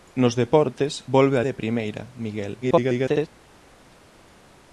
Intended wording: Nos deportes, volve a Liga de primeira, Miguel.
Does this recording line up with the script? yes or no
no